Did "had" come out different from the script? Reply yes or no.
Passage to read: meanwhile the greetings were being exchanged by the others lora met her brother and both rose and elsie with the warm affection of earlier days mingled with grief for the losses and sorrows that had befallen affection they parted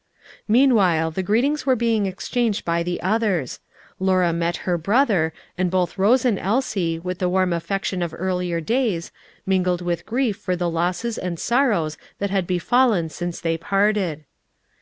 no